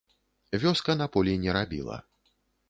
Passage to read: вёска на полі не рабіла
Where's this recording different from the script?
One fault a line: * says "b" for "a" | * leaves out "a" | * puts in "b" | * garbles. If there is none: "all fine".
all fine